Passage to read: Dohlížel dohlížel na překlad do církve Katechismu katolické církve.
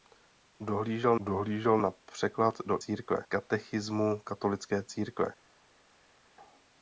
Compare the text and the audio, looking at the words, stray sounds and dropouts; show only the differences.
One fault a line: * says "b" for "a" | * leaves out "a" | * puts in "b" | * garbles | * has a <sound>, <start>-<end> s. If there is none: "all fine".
all fine